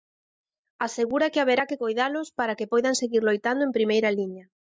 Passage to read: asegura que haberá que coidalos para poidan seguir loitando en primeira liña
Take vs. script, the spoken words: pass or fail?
fail